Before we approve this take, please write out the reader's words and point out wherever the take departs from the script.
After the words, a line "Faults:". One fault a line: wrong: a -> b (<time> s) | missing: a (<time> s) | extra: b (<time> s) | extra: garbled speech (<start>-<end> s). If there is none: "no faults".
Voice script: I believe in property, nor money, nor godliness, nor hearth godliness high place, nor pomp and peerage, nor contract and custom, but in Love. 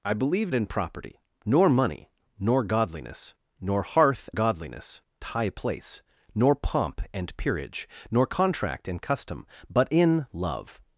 I believe in property, nor money, nor godliness, nor hearth godliness high place, nor pomp and peerage, nor contract and custom, but in Love.
Faults:
no faults